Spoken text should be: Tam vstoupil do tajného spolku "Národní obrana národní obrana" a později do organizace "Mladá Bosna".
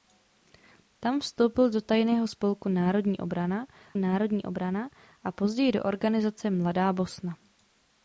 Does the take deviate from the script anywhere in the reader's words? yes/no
no